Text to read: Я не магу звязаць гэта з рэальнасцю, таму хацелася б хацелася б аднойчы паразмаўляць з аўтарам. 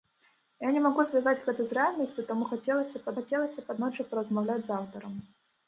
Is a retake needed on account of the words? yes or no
no